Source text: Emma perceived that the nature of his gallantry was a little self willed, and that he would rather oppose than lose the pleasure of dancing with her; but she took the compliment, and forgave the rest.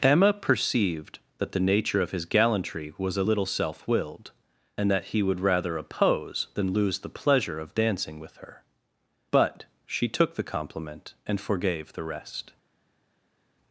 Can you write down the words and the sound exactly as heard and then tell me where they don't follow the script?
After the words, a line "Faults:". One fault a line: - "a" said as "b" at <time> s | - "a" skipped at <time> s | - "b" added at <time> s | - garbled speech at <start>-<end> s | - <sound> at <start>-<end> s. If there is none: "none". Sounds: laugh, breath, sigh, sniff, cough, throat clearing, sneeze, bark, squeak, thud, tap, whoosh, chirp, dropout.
Emma perceived that the nature of his gallantry was a little self willed, and that he would rather oppose than lose the pleasure of dancing with her; but she took the compliment, and forgave the rest.
Faults:
none